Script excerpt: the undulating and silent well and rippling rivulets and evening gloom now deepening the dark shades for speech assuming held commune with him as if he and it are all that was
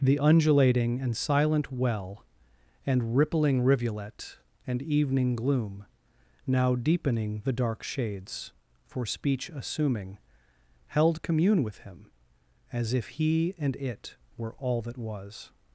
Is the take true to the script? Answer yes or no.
no